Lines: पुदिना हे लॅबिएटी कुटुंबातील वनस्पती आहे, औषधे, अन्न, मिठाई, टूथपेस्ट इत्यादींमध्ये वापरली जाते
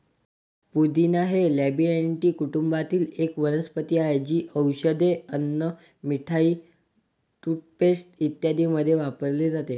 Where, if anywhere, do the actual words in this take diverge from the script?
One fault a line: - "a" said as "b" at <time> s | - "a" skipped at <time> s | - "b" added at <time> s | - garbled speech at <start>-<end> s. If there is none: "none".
- "एक" added at 3.2 s
- "जी" added at 4.2 s